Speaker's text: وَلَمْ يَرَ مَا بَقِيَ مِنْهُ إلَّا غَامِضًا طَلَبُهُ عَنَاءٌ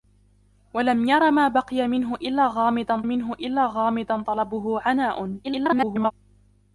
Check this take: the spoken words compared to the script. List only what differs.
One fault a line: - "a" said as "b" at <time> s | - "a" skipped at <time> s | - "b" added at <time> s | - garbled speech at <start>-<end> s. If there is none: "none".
- "مِنْهُ إلَّا غَامِضًا" added at 3.0 s
- garbled speech at 5.4-6.1 s